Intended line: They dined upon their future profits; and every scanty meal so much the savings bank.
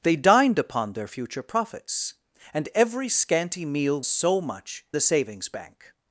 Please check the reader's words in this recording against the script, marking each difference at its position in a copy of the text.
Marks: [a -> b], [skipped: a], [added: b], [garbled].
They dined upon their future profits; and every scanty meal so much the savings bank.